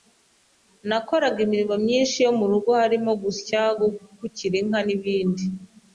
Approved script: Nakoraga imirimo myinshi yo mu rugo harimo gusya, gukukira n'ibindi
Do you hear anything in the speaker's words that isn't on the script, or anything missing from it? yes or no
yes